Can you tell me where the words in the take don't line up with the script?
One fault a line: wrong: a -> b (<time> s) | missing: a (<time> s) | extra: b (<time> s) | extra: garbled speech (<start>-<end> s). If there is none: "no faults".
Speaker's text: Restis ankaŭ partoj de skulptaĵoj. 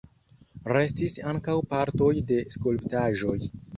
no faults